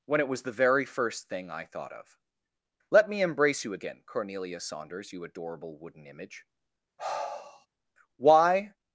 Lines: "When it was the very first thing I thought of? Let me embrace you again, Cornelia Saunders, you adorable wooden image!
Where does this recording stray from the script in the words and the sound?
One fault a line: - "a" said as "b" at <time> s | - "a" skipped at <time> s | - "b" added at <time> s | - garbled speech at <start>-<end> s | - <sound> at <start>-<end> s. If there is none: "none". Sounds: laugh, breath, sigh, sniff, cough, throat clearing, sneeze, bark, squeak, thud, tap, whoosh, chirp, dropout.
- sigh at 7.0-7.7 s
- "Why" added at 8.2 s